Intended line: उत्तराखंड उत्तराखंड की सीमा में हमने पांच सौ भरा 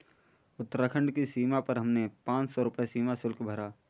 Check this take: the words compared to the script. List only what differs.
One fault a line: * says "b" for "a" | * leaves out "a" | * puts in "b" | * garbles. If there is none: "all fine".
* leaves out "उत्तराखंड"
* says "पर" for "में"
* puts in "रुपए सीमा शुल्क"